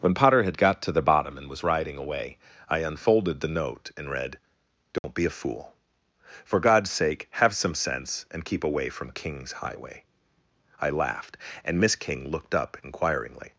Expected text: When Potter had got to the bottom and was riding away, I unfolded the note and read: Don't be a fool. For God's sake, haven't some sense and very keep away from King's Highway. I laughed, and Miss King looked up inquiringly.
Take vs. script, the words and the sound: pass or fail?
fail